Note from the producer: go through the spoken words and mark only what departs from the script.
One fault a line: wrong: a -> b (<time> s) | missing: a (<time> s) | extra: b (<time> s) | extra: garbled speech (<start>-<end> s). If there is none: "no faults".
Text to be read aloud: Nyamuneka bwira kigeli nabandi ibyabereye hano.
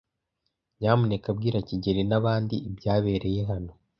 no faults